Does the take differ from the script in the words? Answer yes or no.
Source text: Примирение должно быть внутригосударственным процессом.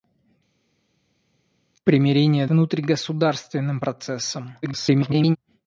yes